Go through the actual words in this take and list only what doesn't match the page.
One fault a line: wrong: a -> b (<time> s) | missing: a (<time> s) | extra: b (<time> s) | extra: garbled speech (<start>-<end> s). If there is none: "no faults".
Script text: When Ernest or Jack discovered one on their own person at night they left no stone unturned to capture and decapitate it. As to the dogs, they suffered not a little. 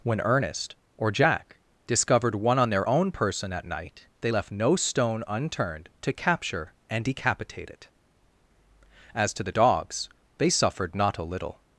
no faults